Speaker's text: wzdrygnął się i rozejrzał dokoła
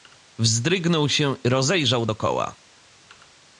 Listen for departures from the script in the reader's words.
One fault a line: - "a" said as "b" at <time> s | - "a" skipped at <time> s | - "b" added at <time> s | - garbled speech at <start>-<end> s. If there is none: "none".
- "i" skipped at 1.4 s